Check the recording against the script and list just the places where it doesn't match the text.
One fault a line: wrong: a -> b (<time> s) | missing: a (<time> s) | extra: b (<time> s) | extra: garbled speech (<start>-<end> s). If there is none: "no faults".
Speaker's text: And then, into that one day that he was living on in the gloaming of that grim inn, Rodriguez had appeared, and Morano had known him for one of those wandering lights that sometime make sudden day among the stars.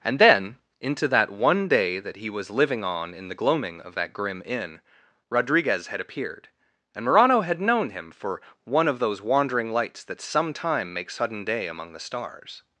no faults